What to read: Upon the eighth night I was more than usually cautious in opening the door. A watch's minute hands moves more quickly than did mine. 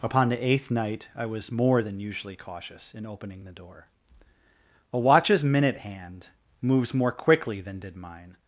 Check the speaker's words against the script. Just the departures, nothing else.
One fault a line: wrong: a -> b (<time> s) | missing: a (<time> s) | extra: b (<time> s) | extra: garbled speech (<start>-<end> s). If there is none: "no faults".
wrong: hands -> hand (5.8 s)